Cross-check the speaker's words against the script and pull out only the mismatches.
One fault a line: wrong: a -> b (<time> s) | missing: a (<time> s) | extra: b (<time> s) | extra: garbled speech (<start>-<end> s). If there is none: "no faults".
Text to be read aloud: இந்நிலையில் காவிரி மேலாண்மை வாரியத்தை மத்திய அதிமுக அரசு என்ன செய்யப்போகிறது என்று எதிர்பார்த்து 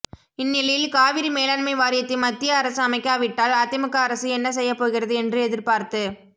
extra: அரசு அமைக்காவிட்டால் (2.6 s)